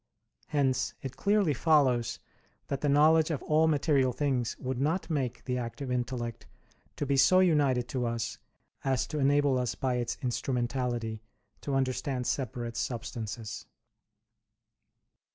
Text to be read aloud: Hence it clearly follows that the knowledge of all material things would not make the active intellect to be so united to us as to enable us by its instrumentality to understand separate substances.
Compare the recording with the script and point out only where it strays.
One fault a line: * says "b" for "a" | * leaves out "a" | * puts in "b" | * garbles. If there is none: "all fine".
all fine